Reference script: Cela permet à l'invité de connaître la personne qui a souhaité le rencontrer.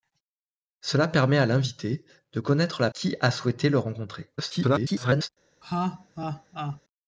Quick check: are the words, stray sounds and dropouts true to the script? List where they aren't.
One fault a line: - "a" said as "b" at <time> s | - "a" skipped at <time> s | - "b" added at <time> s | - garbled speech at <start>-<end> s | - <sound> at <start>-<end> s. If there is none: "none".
- "personne" skipped at 2.9 s
- garbled speech at 4.4-5.3 s
- laugh at 5.6-6.8 s